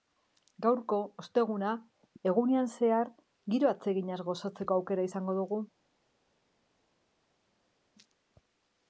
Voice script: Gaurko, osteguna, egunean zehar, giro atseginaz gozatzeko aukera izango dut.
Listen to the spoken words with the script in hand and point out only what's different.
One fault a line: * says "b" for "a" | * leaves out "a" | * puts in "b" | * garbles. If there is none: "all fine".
* says "dugu" for "dut"